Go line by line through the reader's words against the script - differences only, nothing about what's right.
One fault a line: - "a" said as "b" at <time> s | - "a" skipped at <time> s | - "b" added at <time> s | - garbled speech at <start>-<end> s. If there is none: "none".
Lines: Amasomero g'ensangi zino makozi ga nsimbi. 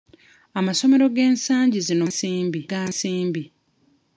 - "makozi" said as "nsimbi" at 2.1 s